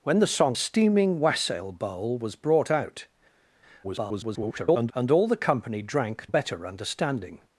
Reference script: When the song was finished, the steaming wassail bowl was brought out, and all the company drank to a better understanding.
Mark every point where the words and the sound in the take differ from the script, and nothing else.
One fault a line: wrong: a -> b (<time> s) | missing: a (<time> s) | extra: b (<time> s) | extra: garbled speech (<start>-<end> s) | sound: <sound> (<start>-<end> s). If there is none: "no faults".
missing: was finished the (0.6 s)
extra: garbled speech (3.8-4.9 s)
missing: to (6.3 s)